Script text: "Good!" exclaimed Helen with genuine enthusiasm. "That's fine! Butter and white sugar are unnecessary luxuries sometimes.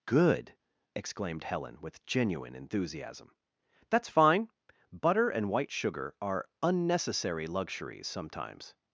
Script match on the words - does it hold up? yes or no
yes